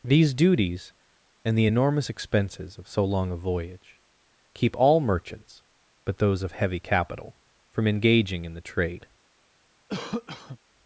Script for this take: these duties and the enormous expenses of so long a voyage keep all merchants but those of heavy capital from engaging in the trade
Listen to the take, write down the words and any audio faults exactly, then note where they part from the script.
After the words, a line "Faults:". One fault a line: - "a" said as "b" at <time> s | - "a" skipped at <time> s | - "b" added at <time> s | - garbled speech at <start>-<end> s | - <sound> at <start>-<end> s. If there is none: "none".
these duties and the enormous expenses of so long a voyage keep all merchants but those of heavy capital from engaging in the trade
Faults:
- cough at 9.9-10.6 s